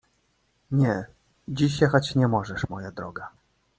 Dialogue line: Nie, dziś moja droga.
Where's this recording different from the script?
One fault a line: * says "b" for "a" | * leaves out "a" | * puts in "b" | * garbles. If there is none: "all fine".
* puts in "jechać nie możesz"